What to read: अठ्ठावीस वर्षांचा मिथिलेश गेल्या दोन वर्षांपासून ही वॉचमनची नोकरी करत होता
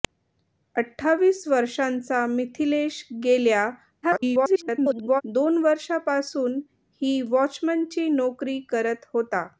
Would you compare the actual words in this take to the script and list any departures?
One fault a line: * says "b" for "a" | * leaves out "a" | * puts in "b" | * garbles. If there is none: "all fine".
* garbles